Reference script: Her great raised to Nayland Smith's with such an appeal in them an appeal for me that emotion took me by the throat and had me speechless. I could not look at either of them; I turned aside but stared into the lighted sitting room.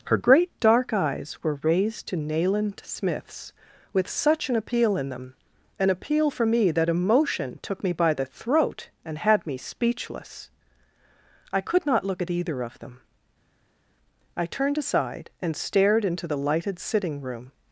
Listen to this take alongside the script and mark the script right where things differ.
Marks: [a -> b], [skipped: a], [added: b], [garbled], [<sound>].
Her great [added: dark eyes were] raised to Nayland Smith's with such an appeal in them an appeal for me that emotion took me by the throat and had me speechless. I could not look at either of them; I turned aside [but -> and] stared into the lighted sitting room.